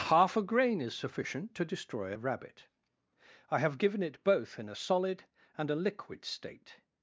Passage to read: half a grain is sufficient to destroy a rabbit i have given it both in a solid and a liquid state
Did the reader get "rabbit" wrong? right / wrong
right